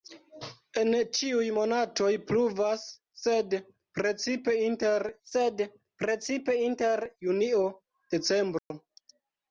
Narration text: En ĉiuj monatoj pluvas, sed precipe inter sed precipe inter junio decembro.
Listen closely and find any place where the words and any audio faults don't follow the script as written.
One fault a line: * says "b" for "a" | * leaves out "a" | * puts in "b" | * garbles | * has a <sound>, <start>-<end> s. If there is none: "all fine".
* has a dropout, 8.6-8.7 s